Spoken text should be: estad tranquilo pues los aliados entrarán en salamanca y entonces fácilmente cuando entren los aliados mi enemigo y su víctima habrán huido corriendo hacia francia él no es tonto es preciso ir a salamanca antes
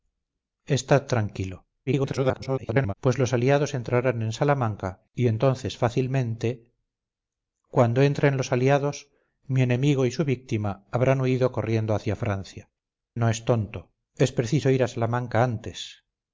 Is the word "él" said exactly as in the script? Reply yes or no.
no